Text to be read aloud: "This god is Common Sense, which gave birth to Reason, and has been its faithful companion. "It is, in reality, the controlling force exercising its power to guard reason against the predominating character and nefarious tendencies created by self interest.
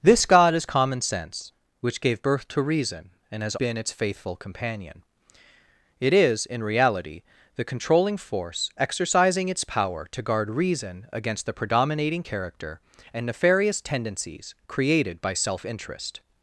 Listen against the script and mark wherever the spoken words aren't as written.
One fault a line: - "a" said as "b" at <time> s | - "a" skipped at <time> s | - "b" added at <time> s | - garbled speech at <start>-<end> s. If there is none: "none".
none